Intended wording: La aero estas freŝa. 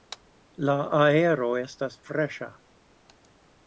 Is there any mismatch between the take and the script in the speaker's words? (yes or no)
no